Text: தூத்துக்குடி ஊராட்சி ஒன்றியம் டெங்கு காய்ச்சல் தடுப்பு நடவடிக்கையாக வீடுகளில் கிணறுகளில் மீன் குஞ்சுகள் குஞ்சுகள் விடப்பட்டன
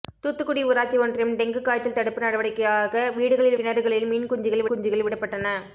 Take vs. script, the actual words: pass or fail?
pass